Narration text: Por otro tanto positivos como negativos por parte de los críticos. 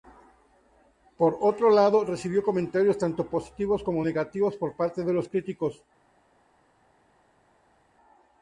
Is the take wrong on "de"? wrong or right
right